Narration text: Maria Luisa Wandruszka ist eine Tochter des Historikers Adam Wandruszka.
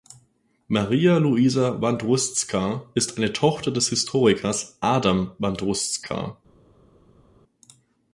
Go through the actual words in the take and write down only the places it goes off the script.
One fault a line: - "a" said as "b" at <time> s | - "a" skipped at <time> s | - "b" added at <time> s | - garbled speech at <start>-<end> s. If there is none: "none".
none